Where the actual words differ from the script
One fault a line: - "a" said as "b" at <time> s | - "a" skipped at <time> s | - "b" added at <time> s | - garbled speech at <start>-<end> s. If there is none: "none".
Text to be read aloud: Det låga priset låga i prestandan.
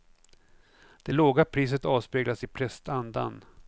- "låga" said as "avspeglas" at 1.8 s